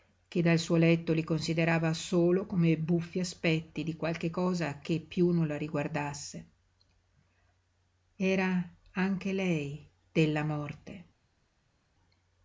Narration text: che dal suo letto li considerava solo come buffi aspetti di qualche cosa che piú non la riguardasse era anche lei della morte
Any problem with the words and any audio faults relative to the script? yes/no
no